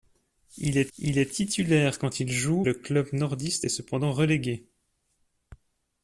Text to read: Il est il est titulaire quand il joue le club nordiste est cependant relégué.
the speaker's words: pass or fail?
pass